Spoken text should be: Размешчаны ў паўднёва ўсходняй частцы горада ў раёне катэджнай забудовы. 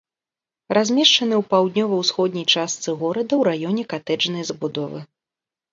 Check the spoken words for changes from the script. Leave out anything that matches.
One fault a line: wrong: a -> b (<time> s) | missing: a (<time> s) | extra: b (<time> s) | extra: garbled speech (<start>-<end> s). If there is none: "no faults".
no faults